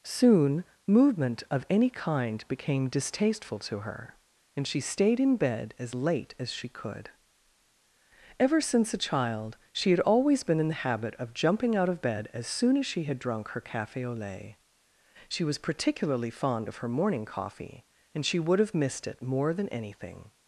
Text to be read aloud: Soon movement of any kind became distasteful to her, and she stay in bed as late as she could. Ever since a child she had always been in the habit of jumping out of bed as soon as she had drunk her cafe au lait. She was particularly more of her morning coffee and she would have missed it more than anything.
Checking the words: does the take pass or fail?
fail